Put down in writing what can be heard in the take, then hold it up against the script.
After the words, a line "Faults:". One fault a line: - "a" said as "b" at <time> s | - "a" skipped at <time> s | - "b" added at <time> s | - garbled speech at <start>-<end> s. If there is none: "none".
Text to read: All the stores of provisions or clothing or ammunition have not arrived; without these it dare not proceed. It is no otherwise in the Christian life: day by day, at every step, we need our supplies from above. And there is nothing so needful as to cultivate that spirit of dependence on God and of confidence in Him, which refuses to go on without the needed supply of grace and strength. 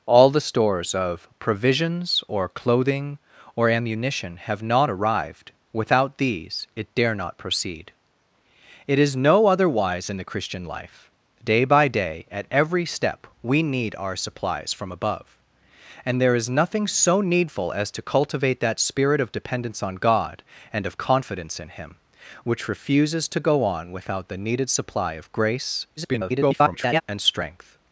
All the stores of provisions or clothing or ammunition have not arrived; without these it dare not proceed. It is no otherwise in the Christian life: day by day, at every step, we need our supplies from above. And there is nothing so needful as to cultivate that spirit of dependence on God and of confidence in Him, which refuses to go on without the needed supply of grace [garbled] and strength.
Faults:
- garbled speech at 26.0-27.0 s